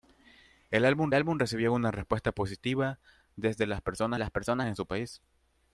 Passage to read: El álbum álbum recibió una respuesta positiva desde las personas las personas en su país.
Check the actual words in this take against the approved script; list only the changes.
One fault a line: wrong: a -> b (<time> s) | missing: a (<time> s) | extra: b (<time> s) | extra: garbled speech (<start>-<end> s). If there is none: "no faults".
no faults